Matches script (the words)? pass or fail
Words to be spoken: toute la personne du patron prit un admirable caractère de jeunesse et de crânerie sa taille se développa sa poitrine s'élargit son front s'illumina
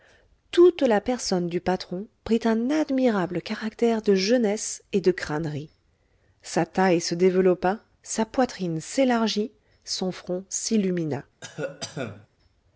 pass